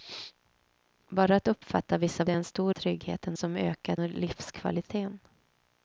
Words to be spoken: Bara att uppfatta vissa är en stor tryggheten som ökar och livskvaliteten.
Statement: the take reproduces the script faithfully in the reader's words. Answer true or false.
true